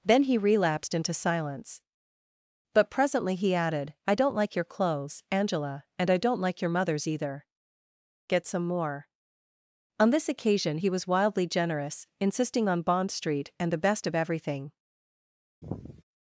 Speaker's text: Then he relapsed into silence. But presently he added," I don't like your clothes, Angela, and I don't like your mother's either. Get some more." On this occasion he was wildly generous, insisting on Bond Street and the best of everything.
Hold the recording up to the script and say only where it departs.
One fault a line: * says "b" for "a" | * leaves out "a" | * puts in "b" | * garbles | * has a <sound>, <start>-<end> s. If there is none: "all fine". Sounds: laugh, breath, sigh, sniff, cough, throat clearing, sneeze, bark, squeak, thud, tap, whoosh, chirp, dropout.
* has a sigh, 15.6-16.0 s